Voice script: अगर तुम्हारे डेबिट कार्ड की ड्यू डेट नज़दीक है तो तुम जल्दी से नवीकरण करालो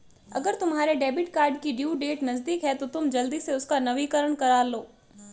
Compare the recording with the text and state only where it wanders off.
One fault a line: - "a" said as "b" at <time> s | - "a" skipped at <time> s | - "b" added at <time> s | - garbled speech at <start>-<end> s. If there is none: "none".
- "उसका" added at 3.5 s